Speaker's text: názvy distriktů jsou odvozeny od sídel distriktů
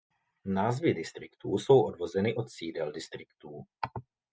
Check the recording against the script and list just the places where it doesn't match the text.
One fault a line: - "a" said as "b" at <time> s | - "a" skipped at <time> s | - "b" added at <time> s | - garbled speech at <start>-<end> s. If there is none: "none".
none